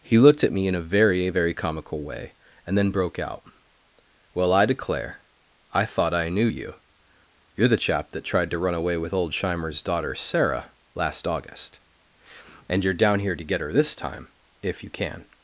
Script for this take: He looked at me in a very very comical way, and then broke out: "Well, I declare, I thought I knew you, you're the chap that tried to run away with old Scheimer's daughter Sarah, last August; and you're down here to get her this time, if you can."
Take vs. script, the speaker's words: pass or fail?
pass